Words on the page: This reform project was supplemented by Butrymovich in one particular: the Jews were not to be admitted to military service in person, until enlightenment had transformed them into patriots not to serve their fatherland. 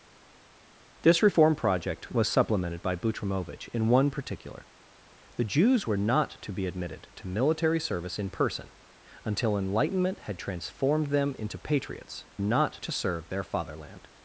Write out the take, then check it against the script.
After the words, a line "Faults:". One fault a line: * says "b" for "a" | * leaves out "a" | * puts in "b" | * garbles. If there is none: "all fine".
This reform project was supplemented by Butrymovich in one particular: the Jews were not to be admitted to military service in person, until enlightenment had transformed them into patriots not to serve their fatherland.
Faults:
all fine